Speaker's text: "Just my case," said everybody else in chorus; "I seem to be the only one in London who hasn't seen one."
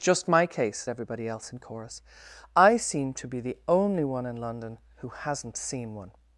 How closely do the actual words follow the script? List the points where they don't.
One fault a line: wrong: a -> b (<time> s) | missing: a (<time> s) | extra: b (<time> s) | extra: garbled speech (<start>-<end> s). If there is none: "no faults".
missing: said (0.9 s)